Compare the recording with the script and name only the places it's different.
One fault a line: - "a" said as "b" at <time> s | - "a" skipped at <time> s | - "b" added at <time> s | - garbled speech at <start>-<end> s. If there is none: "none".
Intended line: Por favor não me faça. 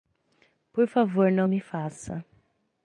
none